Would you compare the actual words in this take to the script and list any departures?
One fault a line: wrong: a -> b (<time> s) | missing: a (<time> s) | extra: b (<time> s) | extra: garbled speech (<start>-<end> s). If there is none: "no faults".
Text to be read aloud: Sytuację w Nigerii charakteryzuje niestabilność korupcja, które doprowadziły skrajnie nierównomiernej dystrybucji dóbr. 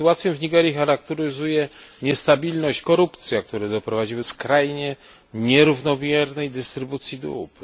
no faults